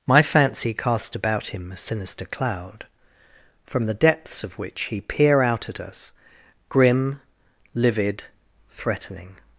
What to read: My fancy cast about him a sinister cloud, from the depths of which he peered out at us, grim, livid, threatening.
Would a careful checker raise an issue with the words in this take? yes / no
yes